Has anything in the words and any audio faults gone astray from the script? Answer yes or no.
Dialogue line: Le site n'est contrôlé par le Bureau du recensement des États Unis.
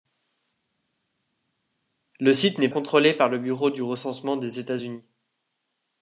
no